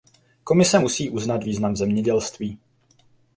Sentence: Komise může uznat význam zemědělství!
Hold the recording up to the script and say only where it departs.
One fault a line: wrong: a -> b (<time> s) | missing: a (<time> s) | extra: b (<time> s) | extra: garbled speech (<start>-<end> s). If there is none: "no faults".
wrong: může -> musí (0.8 s)